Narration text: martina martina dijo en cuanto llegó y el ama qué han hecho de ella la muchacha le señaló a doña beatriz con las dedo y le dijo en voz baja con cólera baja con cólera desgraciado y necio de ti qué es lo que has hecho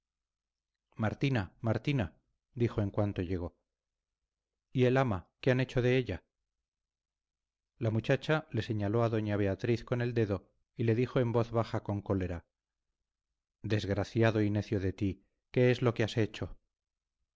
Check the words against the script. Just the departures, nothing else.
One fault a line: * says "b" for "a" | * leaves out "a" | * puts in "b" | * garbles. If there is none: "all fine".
* says "el" for "las"
* leaves out "baja con cólera"